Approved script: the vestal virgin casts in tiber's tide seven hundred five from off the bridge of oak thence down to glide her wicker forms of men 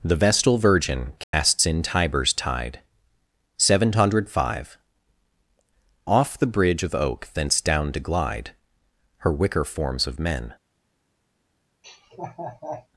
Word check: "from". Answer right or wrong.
wrong